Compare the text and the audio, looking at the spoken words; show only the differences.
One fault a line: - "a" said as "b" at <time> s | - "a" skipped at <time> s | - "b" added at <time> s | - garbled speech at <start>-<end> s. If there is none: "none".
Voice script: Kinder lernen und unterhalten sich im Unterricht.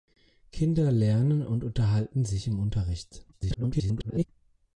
- garbled speech at 3.3-4.3 s